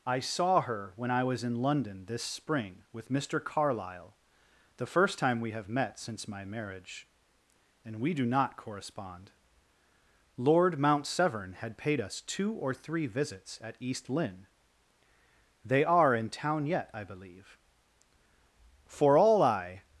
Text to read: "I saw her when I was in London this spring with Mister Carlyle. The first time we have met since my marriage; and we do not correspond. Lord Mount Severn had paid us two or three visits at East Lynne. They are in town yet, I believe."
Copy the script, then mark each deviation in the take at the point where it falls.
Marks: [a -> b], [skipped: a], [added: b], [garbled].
"I saw her when I was in London this spring with Mister Carlyle. The first time we have met since my marriage; and we do not correspond. Lord Mount Severn had paid us two or three visits at East Lynne. They are in town yet, I believe." [added: For all I]